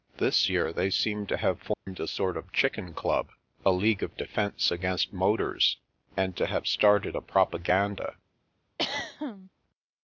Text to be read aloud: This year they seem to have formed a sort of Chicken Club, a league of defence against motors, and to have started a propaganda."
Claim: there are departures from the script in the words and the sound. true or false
true